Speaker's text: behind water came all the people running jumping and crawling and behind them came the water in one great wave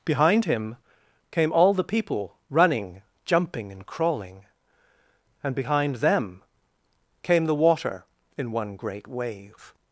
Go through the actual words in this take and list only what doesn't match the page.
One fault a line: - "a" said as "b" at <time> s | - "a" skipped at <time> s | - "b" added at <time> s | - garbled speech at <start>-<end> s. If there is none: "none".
- "water" said as "him" at 0.5 s